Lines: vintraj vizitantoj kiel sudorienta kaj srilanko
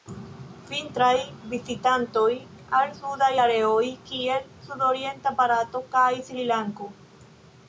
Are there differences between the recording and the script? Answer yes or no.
yes